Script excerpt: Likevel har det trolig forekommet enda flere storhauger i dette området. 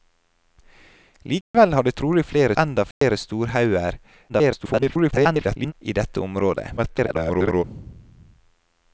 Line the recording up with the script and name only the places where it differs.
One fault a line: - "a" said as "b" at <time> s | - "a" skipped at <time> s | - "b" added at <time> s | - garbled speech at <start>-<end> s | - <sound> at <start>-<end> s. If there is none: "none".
- dropout at 1.4-1.5 s
- "forekommet" said as "flere" at 2.2 s
- dropout at 2.9-3.0 s
- garbled speech at 4.3-5.7 s
- garbled speech at 6.8-7.6 s